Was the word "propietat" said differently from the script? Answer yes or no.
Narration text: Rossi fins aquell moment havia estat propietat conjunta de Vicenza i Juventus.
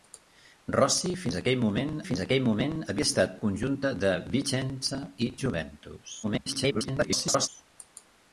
yes